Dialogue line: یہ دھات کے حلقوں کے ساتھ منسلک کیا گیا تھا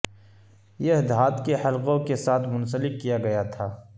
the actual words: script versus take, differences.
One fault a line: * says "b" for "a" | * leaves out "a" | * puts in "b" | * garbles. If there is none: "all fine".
all fine